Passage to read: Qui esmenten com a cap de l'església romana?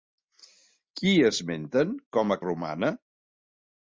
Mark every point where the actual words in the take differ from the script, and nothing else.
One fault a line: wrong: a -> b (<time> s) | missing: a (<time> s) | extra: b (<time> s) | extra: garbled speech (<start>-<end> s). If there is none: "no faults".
missing: cap de l'església (2.4 s)